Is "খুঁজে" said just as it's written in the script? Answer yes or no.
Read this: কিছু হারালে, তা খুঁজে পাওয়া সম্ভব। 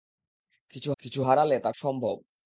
no